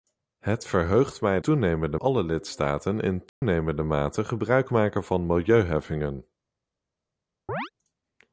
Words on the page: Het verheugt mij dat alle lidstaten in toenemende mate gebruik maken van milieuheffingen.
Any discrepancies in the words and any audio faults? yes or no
yes